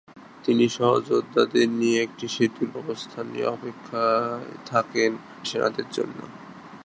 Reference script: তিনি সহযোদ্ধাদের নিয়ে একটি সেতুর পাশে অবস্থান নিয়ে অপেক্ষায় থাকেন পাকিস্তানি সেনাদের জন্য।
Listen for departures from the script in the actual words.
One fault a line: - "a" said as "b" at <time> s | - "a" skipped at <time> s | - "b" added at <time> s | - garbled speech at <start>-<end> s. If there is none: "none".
- "পাশে" skipped at 2.7 s
- "পাকিস্তানি" skipped at 5.1 s